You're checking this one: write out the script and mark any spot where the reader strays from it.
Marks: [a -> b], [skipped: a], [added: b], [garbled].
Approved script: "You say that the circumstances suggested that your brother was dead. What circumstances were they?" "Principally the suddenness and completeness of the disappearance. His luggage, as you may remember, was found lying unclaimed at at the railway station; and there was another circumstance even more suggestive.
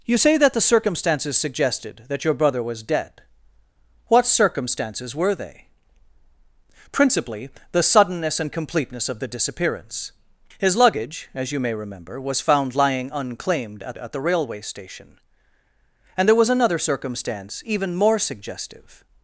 "You say that the circumstances suggested that your brother was dead. What circumstances were they?" "Principally the suddenness and completeness of the disappearance. His luggage, as you may remember, was found lying unclaimed at at the railway station; and there was another circumstance even more suggestive.